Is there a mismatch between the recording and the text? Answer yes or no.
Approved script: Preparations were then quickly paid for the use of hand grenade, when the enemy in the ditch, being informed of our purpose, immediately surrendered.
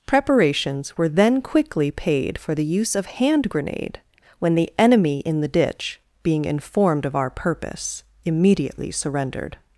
no